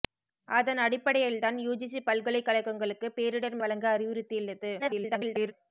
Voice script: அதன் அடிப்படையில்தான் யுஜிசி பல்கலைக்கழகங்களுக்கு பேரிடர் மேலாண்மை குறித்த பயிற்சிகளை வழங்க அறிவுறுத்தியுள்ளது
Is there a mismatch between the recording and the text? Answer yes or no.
yes